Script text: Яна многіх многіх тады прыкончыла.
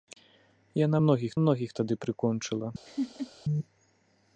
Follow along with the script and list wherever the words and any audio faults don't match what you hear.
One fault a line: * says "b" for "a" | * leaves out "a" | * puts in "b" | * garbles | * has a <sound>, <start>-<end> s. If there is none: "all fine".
* has a laugh, 2.8-3.3 s